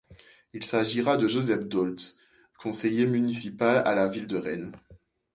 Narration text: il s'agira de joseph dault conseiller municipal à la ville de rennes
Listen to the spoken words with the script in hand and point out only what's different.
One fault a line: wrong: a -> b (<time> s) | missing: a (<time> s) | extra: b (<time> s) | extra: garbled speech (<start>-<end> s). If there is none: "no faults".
no faults